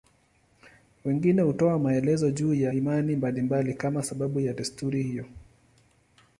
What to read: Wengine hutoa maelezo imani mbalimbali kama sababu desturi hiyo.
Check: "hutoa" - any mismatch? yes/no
no